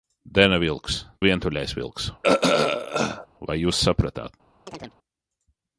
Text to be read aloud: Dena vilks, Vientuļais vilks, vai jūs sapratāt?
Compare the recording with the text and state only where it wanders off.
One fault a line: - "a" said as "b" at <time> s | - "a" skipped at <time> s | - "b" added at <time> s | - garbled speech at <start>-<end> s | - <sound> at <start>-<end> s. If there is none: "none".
- throat clearing at 2.2-3.3 s
- chirp at 4.7-5.0 s